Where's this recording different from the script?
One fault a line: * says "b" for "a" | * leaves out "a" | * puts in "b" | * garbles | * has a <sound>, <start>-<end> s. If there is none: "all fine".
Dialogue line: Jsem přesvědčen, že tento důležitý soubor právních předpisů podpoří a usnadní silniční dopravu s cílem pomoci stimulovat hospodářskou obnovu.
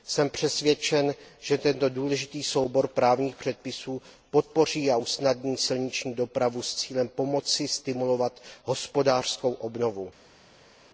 all fine